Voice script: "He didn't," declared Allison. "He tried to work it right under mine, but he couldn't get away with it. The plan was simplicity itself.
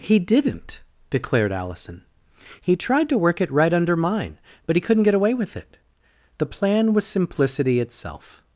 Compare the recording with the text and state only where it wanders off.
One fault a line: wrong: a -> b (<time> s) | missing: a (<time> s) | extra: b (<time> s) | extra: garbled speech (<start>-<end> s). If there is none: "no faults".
no faults